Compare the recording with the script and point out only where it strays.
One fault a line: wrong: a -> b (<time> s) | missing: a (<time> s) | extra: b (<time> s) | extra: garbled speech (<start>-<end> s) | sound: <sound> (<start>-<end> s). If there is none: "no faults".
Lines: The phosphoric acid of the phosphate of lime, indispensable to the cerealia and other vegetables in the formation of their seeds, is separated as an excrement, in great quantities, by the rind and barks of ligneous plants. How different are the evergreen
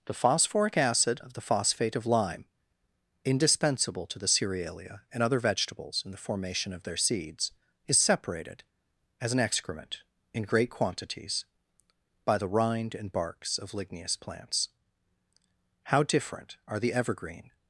no faults